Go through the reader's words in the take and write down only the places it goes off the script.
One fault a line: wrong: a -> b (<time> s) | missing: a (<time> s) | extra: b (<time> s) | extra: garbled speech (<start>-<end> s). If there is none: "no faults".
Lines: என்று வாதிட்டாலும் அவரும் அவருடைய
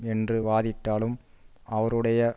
missing: அவரும் (1.2 s)